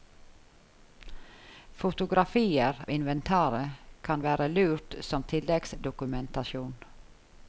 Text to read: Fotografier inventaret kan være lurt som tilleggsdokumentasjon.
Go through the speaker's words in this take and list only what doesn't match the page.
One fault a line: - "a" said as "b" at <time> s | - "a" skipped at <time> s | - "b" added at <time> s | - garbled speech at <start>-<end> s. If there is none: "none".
none